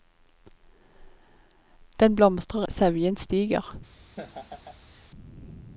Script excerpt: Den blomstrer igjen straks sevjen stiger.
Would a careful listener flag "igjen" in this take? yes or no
yes